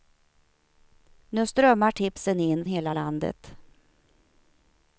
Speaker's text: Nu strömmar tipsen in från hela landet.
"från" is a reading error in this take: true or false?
true